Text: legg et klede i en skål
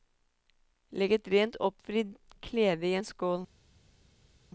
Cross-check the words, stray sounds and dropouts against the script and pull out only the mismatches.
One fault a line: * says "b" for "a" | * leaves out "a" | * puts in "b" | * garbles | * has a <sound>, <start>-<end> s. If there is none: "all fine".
* puts in "rent oppvridd"